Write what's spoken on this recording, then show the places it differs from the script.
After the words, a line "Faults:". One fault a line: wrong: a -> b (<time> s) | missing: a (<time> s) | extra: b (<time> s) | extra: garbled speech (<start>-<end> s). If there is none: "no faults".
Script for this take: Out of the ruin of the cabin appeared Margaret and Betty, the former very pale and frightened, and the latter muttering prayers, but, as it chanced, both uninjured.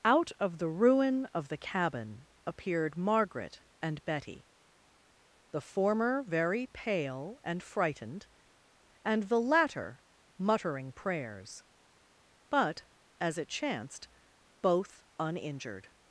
Out of the ruin of the cabin appeared Margaret and Betty, the former very pale and frightened, and the latter muttering prayers, but, as it chanced, both uninjured.
Faults:
no faults